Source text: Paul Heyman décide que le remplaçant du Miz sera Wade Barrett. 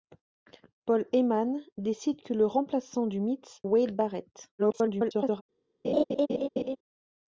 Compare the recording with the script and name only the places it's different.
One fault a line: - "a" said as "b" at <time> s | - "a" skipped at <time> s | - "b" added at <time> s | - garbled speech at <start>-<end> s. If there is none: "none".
- "sera" skipped at 3.6 s
- garbled speech at 4.6-5.4 s